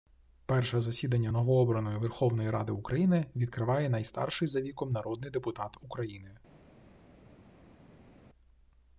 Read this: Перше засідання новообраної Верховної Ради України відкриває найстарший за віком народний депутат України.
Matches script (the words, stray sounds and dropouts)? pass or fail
pass